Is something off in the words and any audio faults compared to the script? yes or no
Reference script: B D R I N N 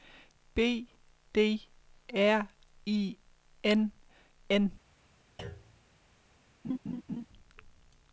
yes